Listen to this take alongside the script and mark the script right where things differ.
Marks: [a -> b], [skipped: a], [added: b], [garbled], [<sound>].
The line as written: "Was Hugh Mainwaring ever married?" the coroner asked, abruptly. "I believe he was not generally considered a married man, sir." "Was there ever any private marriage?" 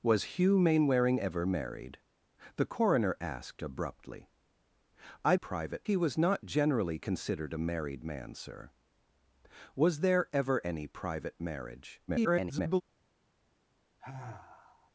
"Was Hugh Mainwaring ever married?" the coroner asked, abruptly. "I [believe -> private] he was not generally considered a married man, sir." "Was there ever any private marriage?" [garbled] [sigh]